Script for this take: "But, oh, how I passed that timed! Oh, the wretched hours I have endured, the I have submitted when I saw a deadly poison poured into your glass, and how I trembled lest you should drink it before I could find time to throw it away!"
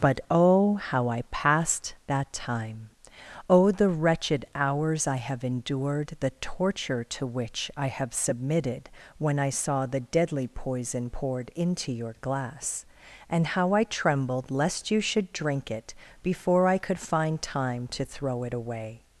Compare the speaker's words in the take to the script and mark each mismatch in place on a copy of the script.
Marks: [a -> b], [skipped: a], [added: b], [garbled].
"But, oh, how I passed that [timed! -> time] Oh, the wretched hours I have endured, the [added: torture to which] I have submitted when I saw [a -> the] deadly poison poured into your glass, and how I trembled lest you should drink it before I could find time to throw it away!"